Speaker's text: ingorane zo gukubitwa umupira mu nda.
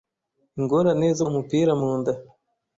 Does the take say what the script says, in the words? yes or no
no